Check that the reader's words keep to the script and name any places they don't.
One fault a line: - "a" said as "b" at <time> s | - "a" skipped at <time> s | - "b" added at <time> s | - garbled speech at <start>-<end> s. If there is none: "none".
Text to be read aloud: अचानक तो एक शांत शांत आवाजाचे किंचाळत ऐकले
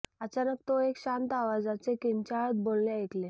- "शांत" skipped at 1.3 s
- "बोलणे" added at 2.6 s